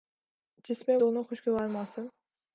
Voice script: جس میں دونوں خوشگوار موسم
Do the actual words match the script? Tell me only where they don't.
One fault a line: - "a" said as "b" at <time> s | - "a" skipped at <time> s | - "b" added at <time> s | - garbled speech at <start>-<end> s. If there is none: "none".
none